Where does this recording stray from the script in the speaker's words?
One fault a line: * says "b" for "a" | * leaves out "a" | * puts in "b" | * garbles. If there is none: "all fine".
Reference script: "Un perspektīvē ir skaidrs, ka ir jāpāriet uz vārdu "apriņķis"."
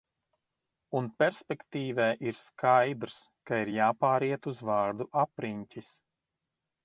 all fine